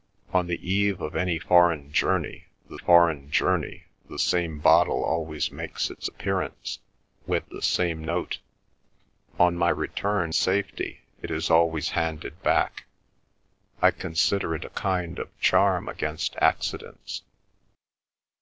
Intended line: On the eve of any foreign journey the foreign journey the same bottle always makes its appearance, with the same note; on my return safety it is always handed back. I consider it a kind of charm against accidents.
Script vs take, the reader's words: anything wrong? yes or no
no